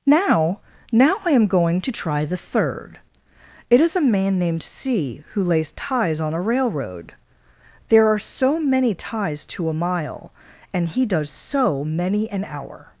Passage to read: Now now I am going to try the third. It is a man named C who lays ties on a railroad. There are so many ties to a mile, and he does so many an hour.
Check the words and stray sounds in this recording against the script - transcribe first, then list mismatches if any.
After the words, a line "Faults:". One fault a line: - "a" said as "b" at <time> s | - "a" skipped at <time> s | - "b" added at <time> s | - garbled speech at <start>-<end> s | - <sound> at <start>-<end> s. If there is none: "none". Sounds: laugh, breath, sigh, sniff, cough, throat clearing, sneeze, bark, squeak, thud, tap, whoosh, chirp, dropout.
Now now I am going to try the third. It is a man named C who lays ties on a railroad. There are so many ties to a mile, and he does so many an hour.
Faults:
none